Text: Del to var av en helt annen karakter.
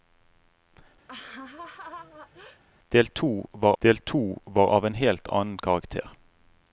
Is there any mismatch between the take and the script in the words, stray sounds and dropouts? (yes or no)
yes